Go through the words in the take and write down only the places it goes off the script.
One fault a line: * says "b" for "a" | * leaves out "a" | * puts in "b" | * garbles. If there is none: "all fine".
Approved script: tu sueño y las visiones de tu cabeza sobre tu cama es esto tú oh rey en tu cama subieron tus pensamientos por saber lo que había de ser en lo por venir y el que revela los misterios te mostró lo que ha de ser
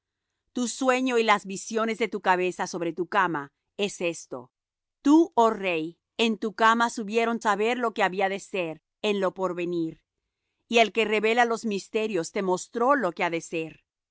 * leaves out "tus pensamientos por"